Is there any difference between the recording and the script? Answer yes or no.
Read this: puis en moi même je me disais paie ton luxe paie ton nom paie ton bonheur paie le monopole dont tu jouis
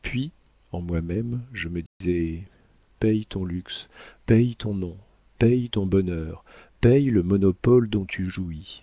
no